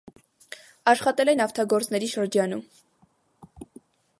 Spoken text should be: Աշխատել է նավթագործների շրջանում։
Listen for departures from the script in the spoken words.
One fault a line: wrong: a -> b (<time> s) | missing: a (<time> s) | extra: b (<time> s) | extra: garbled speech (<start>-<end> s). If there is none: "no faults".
no faults